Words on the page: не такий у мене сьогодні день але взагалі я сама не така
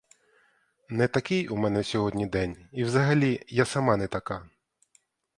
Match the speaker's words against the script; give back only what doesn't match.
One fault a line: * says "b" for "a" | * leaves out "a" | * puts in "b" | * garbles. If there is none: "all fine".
* says "і" for "але"